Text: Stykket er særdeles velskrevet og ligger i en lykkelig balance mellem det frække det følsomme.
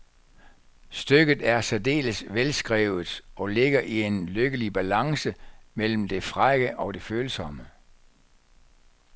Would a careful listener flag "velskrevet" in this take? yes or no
no